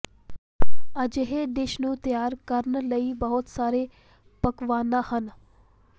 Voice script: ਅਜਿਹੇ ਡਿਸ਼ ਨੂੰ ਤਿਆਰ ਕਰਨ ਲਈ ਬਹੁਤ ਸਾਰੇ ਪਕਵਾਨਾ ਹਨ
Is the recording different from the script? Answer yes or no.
no